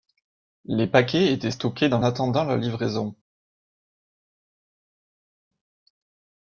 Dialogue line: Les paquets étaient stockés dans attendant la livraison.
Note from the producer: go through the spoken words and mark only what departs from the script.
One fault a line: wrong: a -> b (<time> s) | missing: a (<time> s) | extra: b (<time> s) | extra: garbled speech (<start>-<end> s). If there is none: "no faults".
no faults